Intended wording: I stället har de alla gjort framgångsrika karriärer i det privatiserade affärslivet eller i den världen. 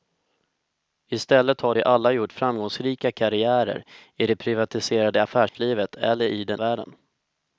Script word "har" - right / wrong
right